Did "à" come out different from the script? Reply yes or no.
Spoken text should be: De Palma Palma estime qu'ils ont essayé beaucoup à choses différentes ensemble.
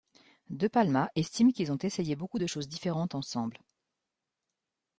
yes